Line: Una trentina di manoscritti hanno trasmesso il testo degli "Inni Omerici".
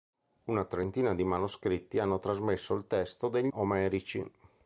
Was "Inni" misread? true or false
true